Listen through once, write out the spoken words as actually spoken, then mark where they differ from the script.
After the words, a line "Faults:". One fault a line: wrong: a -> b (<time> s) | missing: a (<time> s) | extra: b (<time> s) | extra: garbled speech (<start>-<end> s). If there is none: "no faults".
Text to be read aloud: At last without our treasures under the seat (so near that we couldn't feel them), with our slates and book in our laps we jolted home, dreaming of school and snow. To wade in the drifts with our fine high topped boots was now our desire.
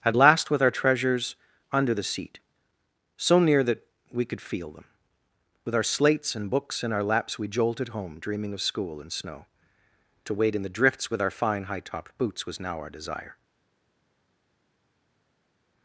At last with our treasures under the seat (so near that we could feel them), with our slates and books in our laps we jolted home, dreaming of school and snow. To wade in the drifts with our fine high topped boots was now our desire.
Faults:
wrong: without -> with (0.5 s)
wrong: couldn't -> could (4.2 s)
wrong: book -> books (6.5 s)